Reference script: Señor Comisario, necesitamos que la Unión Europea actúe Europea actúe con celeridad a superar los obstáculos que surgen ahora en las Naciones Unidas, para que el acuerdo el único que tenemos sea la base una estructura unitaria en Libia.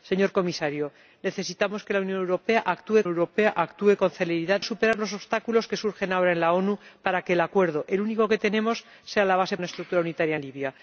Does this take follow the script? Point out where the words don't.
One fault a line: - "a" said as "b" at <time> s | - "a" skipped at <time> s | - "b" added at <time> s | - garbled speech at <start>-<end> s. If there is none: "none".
none